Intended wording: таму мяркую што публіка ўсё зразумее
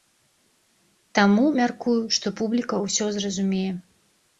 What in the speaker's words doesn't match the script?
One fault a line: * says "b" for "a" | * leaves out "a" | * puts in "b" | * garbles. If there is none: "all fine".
all fine